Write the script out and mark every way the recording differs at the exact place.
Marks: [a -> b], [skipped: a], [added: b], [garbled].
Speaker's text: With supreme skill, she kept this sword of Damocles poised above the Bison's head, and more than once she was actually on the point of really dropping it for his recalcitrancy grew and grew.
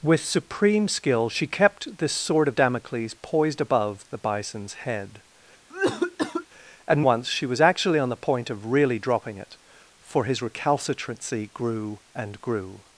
With supreme skill, she kept this sword of Damocles poised above the Bison's head, and [skipped: more than] once she was actually on the point of really dropping it for his recalcitrancy grew and grew.